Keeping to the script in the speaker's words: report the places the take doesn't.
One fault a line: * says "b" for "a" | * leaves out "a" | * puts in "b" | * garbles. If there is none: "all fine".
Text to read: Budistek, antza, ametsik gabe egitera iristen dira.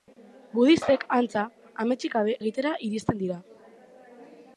all fine